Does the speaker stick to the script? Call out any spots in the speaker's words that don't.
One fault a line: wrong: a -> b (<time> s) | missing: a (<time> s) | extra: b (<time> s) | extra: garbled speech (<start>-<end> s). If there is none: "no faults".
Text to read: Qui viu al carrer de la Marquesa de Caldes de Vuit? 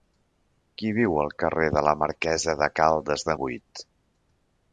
no faults